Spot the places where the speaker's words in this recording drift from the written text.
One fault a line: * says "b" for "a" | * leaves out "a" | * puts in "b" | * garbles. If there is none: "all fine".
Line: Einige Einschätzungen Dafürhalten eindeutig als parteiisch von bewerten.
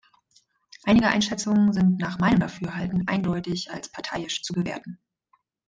* puts in "sind nach meinem"
* says "zu" for "von"